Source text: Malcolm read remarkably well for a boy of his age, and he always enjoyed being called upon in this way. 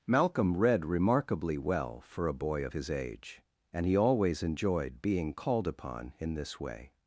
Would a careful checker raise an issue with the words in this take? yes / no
no